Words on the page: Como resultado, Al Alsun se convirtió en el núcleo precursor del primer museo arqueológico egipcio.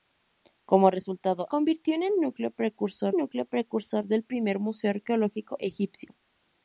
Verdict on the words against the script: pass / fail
fail